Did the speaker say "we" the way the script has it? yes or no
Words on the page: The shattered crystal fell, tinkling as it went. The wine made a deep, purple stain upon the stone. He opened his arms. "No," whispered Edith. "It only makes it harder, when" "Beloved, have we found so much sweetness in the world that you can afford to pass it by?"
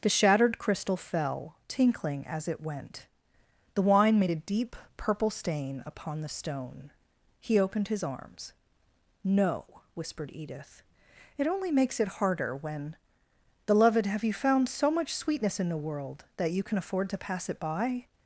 no